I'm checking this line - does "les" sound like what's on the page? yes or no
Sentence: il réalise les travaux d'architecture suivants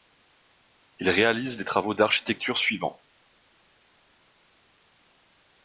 yes